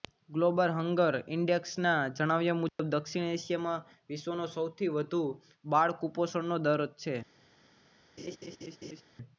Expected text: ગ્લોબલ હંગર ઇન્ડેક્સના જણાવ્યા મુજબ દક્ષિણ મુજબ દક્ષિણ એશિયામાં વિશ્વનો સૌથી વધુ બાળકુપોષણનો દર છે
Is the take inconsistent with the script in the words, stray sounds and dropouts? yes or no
yes